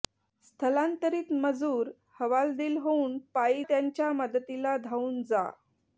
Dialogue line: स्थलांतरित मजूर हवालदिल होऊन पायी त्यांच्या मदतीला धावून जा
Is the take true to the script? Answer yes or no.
yes